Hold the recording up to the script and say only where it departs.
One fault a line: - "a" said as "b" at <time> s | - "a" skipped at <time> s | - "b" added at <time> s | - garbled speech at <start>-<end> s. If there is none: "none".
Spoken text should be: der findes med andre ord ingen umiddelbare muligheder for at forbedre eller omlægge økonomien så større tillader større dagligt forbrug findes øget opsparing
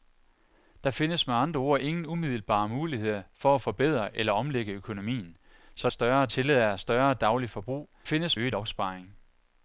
none